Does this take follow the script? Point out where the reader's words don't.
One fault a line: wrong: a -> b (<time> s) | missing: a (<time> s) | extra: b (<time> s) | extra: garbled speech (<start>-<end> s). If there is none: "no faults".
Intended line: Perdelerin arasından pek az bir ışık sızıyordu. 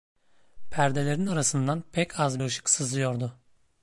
missing: bir (2.4 s)